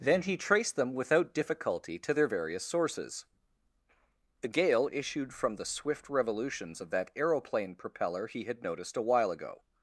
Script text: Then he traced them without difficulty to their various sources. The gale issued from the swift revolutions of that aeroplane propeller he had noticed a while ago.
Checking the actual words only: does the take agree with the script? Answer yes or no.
yes